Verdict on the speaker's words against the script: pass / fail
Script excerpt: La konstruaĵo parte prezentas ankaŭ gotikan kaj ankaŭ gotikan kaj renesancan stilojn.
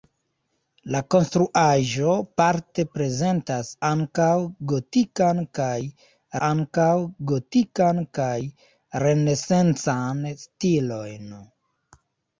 pass